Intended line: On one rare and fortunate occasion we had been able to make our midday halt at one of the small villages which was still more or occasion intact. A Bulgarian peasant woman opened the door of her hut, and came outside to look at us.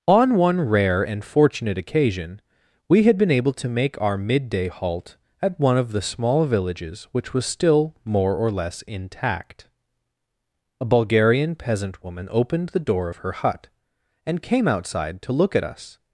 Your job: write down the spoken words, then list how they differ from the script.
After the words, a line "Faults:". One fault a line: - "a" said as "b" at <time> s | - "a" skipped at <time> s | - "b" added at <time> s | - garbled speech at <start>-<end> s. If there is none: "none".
On one rare and fortunate occasion we had been able to make our midday halt at one of the small villages which was still more or less intact. A Bulgarian peasant woman opened the door of her hut, and came outside to look at us.
Faults:
- "occasion" said as "less" at 8.5 s